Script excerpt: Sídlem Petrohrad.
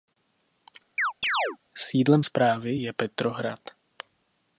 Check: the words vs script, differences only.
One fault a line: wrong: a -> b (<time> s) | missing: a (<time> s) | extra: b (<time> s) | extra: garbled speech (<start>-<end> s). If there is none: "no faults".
extra: správy je (2.2 s)